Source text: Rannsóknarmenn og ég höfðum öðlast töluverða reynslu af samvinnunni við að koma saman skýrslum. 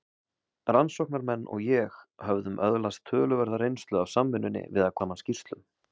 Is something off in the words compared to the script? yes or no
yes